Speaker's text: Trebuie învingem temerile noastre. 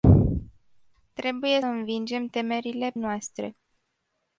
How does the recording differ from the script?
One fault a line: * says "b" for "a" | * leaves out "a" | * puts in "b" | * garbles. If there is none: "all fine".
all fine